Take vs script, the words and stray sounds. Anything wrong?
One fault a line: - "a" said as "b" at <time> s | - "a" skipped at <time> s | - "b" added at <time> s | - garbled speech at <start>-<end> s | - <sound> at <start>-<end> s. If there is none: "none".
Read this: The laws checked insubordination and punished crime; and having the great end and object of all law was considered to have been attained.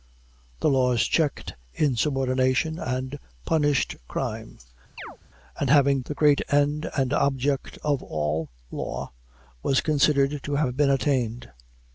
- chirp at 5.0-5.2 s